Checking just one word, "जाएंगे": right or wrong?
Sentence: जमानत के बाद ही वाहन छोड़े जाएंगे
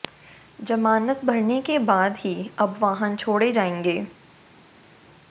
right